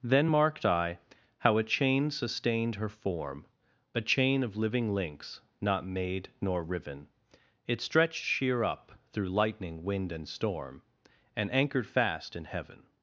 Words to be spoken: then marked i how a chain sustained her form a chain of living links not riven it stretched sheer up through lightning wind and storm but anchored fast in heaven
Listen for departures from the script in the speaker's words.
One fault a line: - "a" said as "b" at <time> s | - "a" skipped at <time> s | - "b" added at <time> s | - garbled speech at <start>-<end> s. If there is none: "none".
- "made nor" added at 5.8 s
- "but" said as "and" at 11.3 s